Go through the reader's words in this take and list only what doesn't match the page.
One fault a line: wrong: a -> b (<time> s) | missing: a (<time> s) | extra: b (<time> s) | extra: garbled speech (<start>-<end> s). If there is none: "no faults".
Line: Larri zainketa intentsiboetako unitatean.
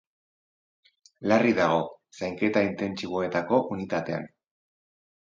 extra: dago (1.6 s)